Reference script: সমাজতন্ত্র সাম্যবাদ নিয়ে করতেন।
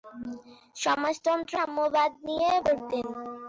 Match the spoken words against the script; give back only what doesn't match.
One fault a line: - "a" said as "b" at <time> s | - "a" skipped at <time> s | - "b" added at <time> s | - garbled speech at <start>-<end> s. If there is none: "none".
none